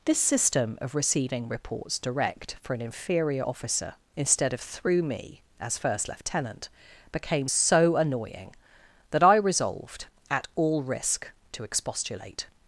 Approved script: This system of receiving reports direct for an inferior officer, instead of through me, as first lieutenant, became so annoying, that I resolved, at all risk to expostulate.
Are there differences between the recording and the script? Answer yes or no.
no